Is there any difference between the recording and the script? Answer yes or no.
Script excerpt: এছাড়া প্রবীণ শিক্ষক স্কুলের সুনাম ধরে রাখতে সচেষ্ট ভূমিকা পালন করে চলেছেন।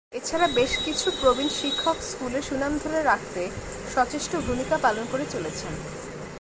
yes